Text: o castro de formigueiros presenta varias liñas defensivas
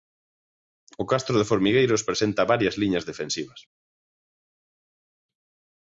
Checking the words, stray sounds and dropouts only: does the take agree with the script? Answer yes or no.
yes